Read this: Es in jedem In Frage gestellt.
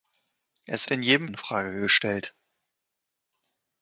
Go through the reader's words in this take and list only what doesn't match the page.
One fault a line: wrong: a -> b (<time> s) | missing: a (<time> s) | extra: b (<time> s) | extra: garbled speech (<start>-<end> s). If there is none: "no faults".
no faults